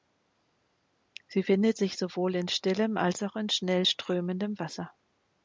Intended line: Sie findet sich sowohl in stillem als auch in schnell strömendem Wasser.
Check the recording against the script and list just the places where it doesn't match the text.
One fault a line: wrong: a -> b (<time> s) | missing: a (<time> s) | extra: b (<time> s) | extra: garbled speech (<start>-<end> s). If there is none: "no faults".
no faults